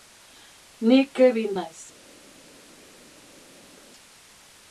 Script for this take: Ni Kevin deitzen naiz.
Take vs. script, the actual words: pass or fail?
fail